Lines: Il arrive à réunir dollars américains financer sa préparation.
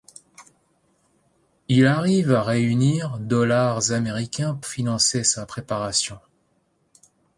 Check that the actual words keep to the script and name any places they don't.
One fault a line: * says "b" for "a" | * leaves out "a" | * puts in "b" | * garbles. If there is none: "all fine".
all fine